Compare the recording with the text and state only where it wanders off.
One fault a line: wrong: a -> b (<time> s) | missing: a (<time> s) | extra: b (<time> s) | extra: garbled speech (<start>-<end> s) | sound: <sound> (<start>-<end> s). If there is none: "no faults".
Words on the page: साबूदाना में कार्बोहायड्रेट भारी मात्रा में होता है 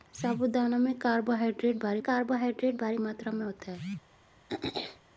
extra: कार्बोहायड्रेट भारी (2.0 s)
sound: throat clearing (4.5-5.0 s)